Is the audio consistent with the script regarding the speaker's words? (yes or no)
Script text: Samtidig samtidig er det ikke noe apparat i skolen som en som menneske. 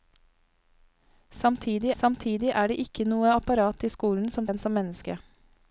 yes